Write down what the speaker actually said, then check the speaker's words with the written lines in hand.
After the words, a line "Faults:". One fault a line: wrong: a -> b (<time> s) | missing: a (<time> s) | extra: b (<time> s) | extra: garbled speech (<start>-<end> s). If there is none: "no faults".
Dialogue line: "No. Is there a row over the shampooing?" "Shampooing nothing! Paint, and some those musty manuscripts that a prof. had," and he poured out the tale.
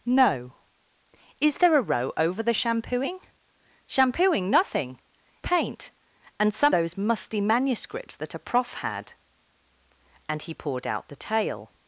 "No. Is there a row over the shampooing?" "Shampooing nothing! Paint, and some those musty manuscripts that a prof. had," and he poured out the tale.
Faults:
no faults